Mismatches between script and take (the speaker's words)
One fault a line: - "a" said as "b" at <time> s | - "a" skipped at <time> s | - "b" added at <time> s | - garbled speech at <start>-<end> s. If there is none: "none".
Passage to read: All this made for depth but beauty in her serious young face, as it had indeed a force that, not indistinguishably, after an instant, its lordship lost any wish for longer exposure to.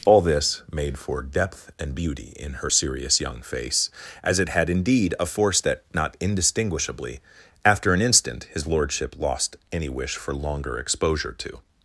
- "but" said as "and" at 1.8 s
- "its" said as "his" at 8.5 s